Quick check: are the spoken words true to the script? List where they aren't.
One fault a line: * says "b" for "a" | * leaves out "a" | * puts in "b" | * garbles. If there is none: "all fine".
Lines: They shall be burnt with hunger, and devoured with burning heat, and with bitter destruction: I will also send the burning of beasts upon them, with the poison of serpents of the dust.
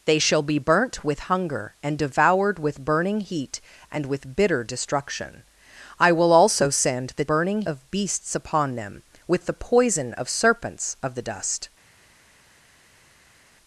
all fine